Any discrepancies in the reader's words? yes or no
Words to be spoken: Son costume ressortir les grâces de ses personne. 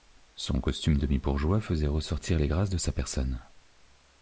yes